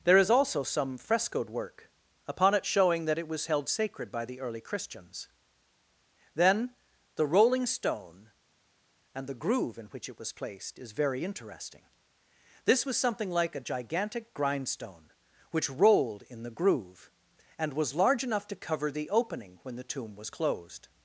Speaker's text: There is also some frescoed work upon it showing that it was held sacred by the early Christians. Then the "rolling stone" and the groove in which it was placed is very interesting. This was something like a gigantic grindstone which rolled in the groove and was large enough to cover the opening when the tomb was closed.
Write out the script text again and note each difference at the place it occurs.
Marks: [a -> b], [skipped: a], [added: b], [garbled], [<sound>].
There is also some frescoed work upon it showing that it was held sacred by the early Christians. Then the "rolling stone" and the groove in which it was placed is very interesting. This was something like a gigantic grindstone which rolled in the groove and was large enough to cover the opening when the tomb was closed.